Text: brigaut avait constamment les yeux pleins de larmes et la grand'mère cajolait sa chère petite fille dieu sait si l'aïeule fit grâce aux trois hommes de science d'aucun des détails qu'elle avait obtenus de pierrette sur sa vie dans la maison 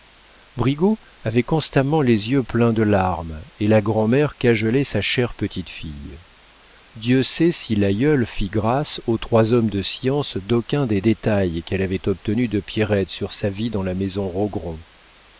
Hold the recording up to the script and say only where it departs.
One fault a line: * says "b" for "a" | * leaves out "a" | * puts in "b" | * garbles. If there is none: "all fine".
all fine